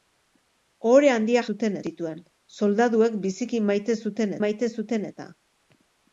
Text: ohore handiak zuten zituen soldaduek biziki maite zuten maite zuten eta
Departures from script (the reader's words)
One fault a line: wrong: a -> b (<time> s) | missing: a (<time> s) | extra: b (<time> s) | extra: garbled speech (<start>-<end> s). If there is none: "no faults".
no faults